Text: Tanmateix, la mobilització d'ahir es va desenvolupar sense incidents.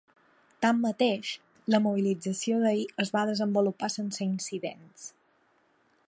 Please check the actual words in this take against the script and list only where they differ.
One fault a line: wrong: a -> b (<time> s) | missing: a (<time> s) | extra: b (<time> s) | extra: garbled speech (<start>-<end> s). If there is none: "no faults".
no faults